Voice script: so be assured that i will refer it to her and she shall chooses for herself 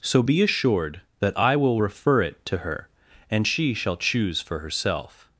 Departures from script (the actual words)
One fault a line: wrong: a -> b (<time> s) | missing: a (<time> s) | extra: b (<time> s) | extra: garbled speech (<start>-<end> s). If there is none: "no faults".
wrong: chooses -> choose (4.0 s)